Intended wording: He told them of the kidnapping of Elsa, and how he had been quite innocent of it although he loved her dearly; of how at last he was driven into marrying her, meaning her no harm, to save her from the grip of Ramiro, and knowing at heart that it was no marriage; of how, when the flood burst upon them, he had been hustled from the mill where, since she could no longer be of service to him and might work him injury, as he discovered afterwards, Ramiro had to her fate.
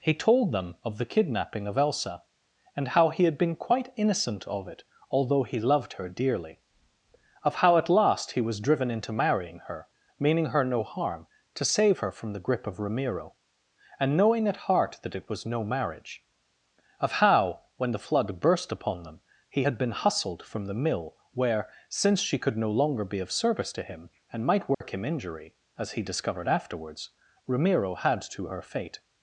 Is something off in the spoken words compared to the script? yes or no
no